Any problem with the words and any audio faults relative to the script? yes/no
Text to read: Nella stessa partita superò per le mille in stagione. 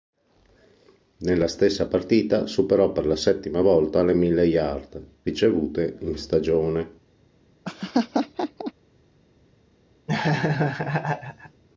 yes